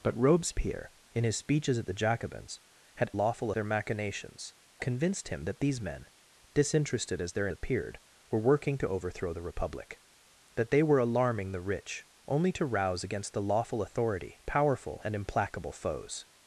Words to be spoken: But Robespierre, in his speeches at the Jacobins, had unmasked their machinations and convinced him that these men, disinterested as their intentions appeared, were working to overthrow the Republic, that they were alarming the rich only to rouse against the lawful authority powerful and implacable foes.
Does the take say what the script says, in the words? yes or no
no